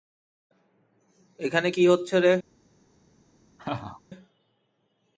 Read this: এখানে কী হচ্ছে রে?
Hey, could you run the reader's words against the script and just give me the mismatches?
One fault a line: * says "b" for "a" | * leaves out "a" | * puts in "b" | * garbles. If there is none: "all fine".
all fine